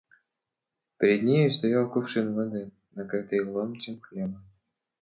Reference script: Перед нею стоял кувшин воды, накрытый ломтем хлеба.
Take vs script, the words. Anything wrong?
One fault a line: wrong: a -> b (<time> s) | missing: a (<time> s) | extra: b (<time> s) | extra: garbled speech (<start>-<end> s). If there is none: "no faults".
no faults